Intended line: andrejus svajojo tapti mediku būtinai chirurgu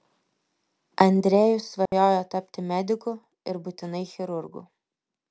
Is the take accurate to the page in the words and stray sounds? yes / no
no